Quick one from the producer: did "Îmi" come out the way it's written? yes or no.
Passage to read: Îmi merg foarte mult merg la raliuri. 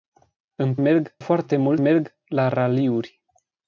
yes